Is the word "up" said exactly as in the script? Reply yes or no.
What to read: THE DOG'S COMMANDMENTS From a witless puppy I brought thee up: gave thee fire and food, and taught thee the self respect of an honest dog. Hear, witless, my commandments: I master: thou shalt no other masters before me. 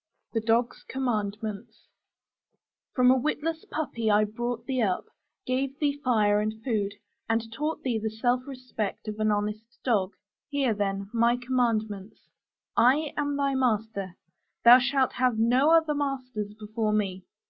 yes